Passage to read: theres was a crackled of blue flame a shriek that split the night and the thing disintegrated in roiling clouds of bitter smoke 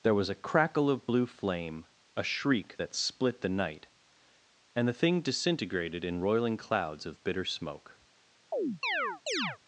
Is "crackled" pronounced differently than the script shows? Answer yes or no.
yes